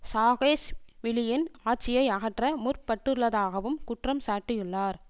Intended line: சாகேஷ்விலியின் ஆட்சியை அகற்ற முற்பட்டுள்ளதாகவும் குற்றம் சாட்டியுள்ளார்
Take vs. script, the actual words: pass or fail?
pass